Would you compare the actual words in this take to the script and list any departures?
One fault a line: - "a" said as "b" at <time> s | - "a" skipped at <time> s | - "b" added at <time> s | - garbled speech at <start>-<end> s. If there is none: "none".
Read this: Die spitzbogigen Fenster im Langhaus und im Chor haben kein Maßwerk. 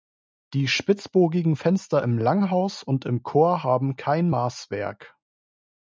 none